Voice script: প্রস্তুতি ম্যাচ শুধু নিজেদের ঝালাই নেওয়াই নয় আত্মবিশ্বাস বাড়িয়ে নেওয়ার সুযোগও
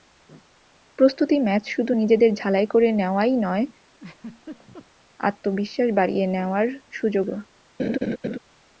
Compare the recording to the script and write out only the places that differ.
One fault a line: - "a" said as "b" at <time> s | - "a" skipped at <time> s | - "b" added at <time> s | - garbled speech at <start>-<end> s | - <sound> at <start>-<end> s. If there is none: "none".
- "করে" added at 2.7 s
- laugh at 3.9-4.9 s
- laugh at 7.8-8.4 s